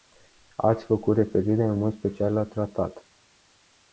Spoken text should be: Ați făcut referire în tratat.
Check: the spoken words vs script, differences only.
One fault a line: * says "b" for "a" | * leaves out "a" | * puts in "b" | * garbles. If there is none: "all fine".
* puts in "mod special la"